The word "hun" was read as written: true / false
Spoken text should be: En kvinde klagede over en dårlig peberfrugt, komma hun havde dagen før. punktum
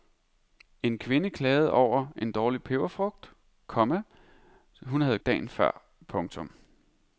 true